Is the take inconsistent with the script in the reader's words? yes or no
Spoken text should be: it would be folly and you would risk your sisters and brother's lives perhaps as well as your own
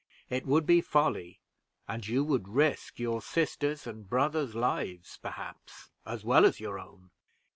no